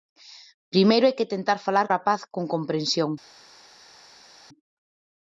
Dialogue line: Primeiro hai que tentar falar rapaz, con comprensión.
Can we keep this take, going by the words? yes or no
yes